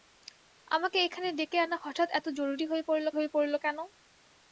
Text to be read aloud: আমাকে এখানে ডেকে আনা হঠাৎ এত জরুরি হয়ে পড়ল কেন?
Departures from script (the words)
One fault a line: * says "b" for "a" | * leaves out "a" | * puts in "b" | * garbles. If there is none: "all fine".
* puts in "হয়ে পড়ল"